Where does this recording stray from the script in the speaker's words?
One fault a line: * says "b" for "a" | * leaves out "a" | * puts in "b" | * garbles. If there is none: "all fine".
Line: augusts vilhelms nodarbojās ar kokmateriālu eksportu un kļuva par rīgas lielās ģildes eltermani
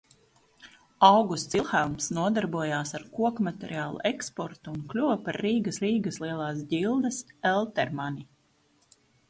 * puts in "rīgas"